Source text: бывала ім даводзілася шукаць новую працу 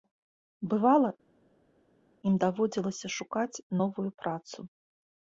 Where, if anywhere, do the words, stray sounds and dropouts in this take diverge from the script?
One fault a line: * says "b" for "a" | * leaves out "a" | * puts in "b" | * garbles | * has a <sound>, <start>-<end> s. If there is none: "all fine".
all fine